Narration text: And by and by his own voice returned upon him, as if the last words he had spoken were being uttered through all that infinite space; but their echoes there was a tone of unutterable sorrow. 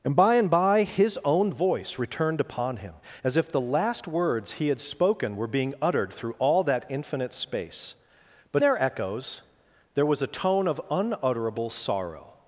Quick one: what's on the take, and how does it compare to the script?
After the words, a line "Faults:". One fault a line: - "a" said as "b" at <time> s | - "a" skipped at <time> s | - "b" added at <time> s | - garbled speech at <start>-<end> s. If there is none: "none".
And by and by his own voice returned upon him, as if the last words he had spoken were being uttered through all that infinite space; but their echoes there was a tone of unutterable sorrow.
Faults:
none